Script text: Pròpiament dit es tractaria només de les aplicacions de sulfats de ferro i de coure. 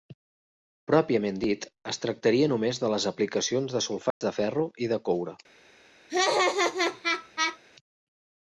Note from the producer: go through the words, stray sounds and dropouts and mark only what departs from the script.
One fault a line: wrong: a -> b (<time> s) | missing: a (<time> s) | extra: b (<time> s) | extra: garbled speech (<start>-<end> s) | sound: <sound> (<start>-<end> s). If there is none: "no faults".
sound: dropout (4.1-4.2 s)
sound: laugh (6.1-7.6 s)